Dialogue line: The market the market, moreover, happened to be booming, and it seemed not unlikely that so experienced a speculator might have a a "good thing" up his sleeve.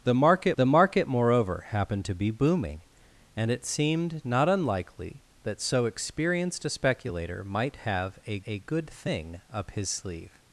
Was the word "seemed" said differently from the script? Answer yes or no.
no